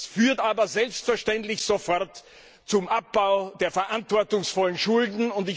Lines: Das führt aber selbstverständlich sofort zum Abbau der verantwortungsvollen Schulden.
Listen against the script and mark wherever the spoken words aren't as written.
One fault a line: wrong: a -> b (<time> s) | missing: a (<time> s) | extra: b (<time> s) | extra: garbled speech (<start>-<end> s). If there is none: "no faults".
no faults